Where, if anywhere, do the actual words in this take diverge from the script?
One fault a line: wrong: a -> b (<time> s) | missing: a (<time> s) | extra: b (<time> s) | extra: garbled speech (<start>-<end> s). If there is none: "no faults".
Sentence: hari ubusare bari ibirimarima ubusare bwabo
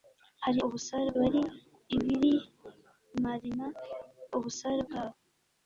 no faults